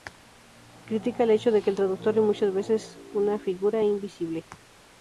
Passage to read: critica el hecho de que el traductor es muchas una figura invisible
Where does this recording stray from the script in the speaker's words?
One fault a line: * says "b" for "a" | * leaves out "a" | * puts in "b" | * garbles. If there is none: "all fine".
* puts in "veces"